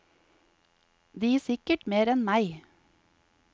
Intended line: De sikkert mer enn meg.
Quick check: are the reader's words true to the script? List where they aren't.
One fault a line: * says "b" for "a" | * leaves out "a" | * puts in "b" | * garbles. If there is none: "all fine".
all fine